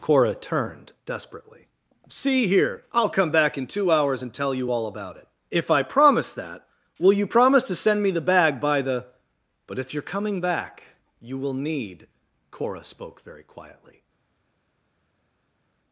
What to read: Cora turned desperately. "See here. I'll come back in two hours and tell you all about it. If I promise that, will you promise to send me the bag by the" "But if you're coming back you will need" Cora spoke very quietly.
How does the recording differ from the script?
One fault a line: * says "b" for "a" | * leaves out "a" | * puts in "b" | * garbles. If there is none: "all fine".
all fine